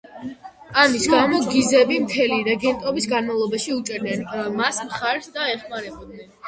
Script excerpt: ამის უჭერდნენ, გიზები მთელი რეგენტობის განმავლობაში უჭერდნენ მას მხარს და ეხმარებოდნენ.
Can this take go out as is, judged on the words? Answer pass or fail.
fail